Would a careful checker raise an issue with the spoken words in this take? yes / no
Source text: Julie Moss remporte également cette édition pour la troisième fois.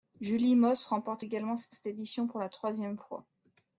yes